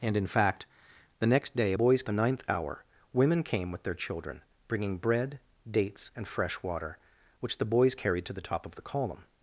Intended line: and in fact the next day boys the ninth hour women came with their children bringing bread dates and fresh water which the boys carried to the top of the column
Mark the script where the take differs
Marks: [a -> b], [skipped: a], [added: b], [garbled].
and in fact the next day boys the ninth hour women came with their children bringing bread dates and fresh water which the boys carried to the top of the column